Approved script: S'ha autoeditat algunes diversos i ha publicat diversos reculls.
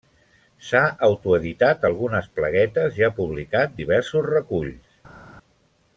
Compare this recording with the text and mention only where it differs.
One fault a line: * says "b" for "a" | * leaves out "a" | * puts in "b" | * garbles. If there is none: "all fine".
* says "plaguetes" for "diversos"